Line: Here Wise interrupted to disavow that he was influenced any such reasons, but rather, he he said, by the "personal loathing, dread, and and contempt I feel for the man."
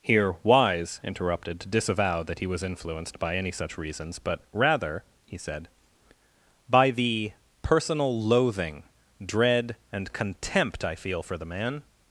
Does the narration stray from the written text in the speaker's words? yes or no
yes